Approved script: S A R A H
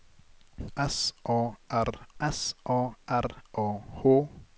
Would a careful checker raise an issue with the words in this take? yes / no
yes